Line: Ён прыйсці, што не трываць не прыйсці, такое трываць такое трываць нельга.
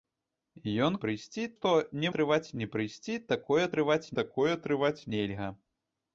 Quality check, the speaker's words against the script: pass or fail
pass